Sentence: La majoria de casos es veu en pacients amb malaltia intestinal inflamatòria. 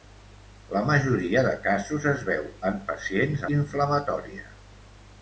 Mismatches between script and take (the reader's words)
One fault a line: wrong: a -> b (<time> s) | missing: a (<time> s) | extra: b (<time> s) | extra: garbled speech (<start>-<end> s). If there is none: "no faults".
missing: amb malaltia intestinal (3.4 s)